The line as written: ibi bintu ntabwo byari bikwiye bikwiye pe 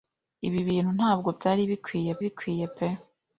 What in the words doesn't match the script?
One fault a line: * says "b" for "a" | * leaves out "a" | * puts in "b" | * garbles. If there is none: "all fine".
all fine